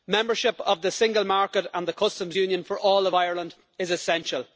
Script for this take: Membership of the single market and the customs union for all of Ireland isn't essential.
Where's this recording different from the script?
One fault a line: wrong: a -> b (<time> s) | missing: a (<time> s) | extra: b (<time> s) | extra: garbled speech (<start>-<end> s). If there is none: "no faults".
wrong: isn't -> is (3.8 s)